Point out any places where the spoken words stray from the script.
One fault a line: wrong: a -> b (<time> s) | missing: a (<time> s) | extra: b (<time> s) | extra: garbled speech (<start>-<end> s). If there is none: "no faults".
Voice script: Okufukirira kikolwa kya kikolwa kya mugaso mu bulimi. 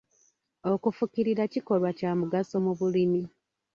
missing: kikolwa kya (2.1 s)